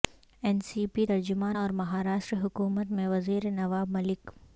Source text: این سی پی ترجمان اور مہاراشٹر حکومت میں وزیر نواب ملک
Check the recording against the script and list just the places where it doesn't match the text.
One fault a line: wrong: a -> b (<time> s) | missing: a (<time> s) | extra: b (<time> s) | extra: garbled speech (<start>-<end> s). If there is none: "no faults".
no faults